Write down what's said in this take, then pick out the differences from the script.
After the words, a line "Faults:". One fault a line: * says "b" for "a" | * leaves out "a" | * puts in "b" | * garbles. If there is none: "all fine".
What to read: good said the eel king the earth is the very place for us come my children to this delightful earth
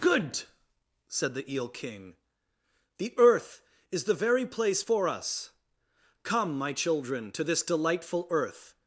good said the eel king the earth is the very place for us come my children to this delightful earth
Faults:
all fine